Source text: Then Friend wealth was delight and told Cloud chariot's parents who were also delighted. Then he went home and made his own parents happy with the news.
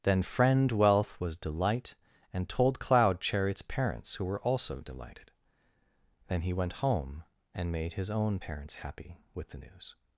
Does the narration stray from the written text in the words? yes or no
no